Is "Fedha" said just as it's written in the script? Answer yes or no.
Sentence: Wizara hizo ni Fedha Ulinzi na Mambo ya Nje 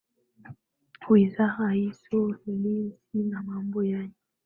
no